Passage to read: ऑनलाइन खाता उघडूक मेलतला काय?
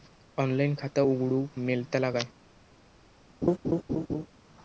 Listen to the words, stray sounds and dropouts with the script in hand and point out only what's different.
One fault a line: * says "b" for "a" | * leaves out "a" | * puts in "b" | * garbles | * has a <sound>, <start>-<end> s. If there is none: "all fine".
* has a laugh, 3.4-4.3 s